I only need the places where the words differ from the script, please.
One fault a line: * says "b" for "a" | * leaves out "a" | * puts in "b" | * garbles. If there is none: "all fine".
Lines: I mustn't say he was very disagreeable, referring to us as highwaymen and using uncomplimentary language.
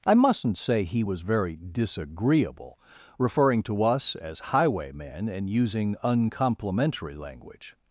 all fine